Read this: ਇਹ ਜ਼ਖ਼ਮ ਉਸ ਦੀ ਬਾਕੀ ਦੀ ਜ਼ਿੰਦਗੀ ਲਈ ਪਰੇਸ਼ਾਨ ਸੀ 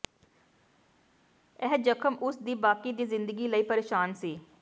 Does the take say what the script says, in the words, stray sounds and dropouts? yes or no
yes